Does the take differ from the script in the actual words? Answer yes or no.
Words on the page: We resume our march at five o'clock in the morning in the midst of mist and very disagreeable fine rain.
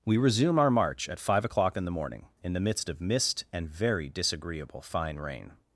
no